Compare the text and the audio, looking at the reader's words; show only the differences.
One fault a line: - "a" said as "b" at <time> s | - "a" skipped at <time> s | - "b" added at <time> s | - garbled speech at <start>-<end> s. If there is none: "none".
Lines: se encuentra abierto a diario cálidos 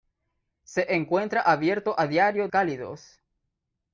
none